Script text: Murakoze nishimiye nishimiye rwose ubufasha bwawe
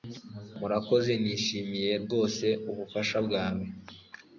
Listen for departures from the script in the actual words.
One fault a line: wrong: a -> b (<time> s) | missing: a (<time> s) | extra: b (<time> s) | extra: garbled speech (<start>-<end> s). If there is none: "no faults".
missing: nishimiye (1.9 s)